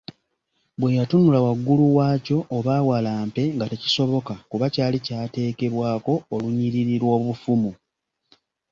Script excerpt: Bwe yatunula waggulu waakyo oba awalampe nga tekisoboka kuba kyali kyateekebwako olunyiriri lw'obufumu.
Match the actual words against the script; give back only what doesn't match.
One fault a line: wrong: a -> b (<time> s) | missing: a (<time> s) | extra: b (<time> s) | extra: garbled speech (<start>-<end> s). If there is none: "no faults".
no faults